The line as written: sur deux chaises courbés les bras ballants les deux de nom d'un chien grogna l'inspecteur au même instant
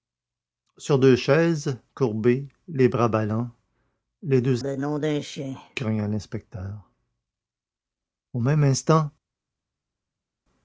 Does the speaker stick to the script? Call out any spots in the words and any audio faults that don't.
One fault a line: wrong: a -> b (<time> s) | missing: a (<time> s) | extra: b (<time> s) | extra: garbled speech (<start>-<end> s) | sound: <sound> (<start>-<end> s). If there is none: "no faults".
no faults